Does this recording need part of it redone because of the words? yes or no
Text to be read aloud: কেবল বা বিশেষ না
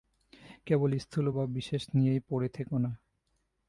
yes